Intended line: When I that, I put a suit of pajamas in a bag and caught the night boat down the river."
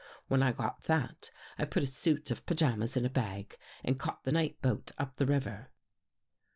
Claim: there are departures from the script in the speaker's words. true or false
true